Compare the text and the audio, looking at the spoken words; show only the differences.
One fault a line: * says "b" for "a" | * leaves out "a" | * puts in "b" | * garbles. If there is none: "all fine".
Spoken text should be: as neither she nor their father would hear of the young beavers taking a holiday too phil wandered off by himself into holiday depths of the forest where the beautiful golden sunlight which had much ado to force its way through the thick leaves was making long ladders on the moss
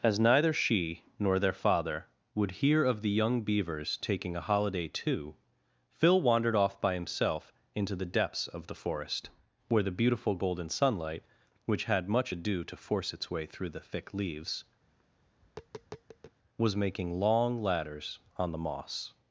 * says "the" for "holiday"